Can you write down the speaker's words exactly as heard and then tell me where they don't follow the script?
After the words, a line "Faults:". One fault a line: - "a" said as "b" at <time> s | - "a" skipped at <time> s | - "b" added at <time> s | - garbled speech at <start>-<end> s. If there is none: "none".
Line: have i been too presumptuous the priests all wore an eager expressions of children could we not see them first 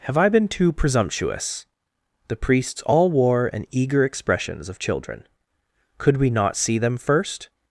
have i been too presumptuous the priests all wore an eager expressions of children could we not see them first
Faults:
none